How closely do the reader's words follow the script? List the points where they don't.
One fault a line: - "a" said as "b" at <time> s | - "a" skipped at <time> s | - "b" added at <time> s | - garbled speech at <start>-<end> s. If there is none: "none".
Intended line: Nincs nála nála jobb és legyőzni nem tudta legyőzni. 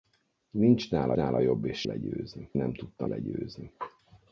none